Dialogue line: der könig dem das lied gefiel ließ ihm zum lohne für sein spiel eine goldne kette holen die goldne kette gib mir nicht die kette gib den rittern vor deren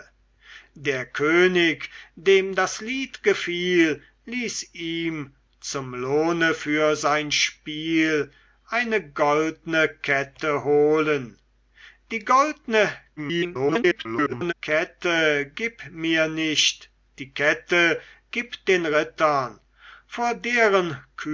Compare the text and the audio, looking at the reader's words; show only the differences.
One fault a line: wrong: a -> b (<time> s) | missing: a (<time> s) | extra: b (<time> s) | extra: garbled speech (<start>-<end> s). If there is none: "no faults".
extra: garbled speech (13.2-14.5 s)